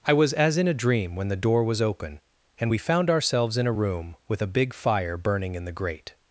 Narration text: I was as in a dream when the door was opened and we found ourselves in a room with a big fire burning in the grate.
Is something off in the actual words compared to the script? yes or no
yes